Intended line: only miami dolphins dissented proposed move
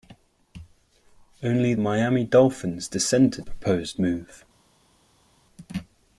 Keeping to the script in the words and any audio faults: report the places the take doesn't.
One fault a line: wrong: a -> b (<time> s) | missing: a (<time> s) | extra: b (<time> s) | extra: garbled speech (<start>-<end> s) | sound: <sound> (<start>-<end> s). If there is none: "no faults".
no faults